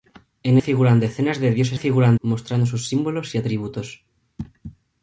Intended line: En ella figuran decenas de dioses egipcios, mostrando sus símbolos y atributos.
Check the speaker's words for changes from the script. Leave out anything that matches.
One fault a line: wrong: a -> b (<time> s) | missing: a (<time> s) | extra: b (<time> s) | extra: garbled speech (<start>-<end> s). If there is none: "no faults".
missing: ella (0.6 s)
wrong: egipcios -> figuran (1.7 s)